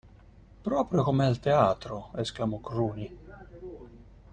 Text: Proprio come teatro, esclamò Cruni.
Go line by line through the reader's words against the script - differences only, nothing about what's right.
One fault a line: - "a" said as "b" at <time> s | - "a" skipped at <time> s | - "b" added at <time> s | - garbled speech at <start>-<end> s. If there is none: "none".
- "al" added at 1.3 s